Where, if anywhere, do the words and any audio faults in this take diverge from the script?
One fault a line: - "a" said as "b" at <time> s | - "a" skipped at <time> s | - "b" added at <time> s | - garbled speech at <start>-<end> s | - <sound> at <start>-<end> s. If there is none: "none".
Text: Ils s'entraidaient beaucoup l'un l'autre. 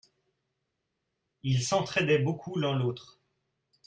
none